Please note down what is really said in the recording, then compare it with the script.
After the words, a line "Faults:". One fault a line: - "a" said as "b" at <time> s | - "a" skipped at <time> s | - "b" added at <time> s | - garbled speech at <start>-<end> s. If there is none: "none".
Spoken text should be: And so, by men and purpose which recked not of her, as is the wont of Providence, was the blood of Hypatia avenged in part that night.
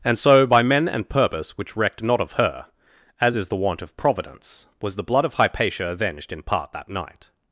And so, by men and purpose which recked not of her, as is the wont of Providence, was the blood of Hypatia avenged in part that night.
Faults:
none